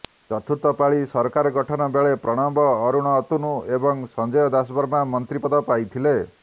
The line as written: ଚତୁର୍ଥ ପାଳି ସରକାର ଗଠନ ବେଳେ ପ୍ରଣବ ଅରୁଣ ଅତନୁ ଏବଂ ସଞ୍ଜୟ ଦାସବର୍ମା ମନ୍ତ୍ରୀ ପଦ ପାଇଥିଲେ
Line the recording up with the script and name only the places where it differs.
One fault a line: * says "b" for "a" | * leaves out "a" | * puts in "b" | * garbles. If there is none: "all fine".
all fine